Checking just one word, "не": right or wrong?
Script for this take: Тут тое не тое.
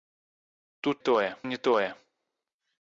right